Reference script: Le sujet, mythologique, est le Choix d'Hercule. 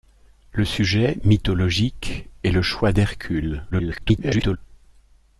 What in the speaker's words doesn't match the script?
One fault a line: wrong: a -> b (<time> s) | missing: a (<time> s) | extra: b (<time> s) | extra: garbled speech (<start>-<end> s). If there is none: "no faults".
extra: garbled speech (3.7-4.6 s)